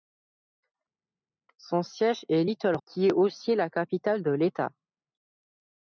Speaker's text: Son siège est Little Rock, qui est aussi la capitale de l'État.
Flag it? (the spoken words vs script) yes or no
yes